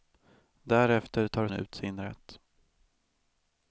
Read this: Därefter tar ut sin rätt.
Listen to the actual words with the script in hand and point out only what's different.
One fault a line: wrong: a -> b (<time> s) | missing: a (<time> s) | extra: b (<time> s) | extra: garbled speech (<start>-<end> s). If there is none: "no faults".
no faults